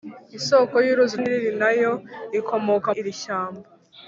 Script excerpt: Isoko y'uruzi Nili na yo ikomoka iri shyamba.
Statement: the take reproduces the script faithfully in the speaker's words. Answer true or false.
true